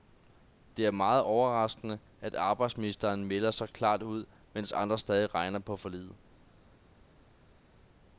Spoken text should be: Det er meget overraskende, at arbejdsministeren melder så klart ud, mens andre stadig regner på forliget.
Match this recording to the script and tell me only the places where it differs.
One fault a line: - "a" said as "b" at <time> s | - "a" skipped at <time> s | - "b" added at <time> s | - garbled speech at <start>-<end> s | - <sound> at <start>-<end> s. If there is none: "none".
none